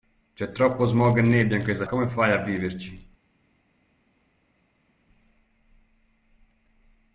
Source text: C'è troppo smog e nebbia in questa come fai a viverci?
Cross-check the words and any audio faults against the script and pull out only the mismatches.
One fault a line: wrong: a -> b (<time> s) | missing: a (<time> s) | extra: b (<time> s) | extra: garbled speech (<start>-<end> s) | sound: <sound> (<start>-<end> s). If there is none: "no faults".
no faults